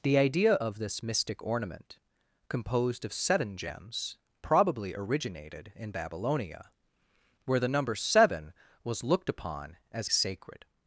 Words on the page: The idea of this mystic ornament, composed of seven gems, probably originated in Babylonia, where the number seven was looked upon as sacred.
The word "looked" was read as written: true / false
true